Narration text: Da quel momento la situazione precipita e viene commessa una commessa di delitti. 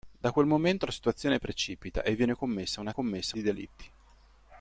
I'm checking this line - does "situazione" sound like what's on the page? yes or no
yes